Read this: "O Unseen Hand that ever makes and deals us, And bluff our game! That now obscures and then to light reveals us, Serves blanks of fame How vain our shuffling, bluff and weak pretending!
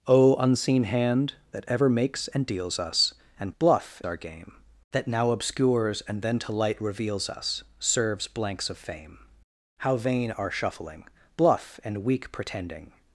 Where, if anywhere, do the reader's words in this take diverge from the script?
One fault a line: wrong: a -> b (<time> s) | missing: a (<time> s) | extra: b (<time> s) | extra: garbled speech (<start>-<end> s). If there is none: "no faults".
no faults